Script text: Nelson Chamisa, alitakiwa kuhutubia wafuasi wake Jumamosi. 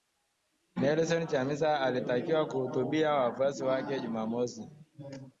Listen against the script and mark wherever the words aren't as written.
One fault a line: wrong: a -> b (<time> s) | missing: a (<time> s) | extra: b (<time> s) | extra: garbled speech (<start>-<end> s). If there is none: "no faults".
no faults